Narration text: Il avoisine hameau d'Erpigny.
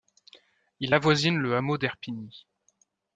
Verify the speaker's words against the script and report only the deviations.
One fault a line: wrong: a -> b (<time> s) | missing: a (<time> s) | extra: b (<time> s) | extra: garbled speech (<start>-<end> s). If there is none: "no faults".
extra: le (1.4 s)